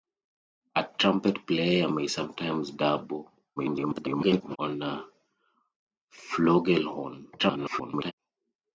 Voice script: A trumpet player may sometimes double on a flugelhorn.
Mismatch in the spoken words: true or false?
true